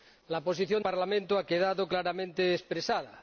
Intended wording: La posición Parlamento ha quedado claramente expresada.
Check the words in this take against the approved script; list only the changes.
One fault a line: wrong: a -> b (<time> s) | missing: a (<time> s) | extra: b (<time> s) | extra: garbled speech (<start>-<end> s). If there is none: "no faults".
no faults